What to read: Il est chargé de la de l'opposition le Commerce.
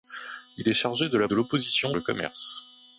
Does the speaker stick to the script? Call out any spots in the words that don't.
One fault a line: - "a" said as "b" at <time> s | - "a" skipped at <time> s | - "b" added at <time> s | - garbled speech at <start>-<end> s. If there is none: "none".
none